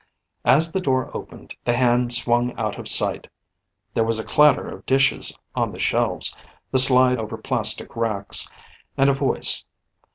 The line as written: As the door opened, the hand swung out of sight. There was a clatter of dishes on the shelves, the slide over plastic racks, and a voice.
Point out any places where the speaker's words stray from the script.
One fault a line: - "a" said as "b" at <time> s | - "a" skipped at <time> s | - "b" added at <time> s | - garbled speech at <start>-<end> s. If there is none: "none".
none